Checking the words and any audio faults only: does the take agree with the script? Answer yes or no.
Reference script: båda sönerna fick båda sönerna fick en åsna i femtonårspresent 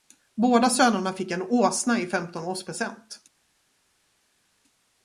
no